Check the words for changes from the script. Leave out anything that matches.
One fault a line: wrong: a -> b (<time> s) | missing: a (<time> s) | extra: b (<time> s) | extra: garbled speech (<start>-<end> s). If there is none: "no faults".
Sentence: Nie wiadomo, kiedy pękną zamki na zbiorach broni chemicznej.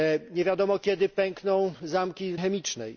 missing: na zbiorach broni (2.3 s)